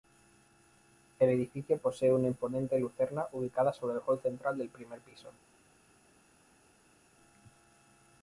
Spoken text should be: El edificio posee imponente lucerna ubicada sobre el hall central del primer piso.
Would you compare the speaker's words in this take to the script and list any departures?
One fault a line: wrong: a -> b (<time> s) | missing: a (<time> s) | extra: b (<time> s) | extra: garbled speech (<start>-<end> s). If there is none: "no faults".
extra: una (2.1 s)